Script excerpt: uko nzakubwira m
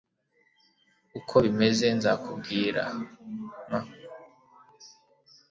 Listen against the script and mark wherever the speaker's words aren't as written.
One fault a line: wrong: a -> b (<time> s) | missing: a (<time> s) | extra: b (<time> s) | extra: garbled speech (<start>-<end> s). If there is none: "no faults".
extra: bimeze (1.4 s)